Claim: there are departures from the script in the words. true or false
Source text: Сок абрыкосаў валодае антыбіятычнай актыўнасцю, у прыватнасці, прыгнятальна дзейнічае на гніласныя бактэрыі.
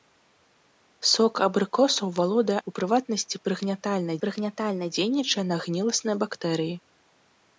true